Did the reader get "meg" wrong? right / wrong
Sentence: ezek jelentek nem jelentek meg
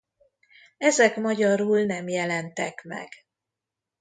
right